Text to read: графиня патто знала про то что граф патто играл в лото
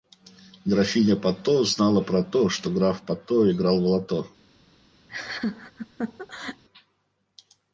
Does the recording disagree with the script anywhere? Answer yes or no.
no